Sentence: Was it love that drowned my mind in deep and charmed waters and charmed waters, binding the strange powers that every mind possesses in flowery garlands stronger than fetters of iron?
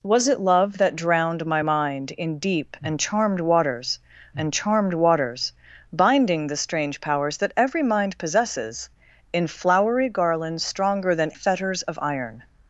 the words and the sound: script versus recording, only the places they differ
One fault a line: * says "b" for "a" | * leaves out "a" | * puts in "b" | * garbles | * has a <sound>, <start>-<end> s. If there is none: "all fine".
all fine